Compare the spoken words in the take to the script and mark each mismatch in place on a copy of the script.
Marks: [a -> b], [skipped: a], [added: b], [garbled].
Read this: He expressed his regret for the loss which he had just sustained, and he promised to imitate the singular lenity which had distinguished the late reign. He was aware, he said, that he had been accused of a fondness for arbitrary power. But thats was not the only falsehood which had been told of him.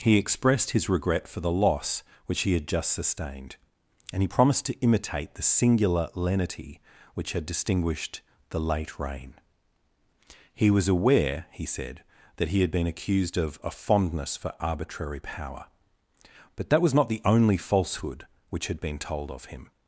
He expressed his regret for the loss which he had just sustained, and he promised to imitate the singular lenity which had distinguished the late reign. He was aware, he said, that he had been accused of a fondness for arbitrary power. But [thats -> that] was not the only falsehood which had been told of him.